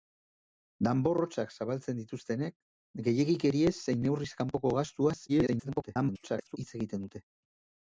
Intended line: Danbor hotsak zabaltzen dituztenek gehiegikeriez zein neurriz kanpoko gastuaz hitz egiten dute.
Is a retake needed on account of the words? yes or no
yes